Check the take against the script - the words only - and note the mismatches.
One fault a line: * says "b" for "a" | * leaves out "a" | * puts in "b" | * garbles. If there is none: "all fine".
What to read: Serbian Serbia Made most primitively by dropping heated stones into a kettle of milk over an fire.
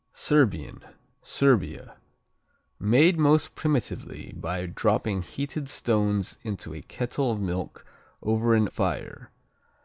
all fine